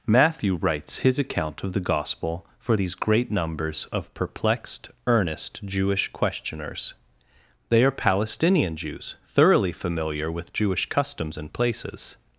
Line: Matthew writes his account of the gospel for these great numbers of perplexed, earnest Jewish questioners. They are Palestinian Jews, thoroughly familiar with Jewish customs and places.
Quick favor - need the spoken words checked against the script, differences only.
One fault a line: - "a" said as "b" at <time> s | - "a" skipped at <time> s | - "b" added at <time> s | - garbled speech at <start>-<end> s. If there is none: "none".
none